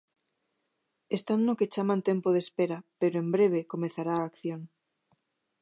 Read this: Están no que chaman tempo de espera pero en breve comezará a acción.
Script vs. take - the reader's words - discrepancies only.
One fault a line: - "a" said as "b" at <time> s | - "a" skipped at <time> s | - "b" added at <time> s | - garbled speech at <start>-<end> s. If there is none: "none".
none